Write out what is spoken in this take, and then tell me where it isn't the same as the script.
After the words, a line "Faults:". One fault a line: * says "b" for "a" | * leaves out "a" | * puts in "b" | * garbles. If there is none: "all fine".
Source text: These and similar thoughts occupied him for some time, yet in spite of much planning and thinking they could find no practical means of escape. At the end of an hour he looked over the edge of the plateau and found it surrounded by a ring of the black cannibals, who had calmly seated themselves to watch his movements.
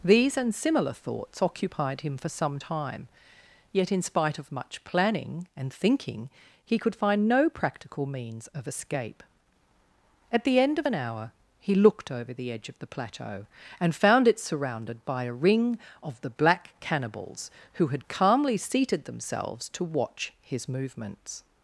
These and similar thoughts occupied him for some time, yet in spite of much planning and thinking he could find no practical means of escape. At the end of an hour he looked over the edge of the plateau and found it surrounded by a ring of the black cannibals, who had calmly seated themselves to watch his movements.
Faults:
* says "he" for "they"